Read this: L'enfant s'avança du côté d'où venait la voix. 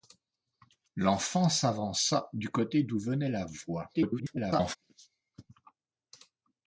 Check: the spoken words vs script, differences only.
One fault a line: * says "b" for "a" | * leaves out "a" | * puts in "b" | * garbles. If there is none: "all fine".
* garbles